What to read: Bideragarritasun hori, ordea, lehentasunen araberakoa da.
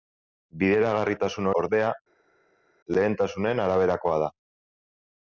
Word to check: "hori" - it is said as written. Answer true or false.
false